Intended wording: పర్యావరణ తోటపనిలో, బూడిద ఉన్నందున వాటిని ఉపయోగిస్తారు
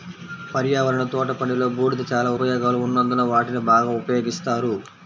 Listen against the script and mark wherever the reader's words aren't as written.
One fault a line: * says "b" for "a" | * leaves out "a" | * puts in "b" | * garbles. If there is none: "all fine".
* puts in "చాలా ఉపయోగాలు"
* puts in "బాగా"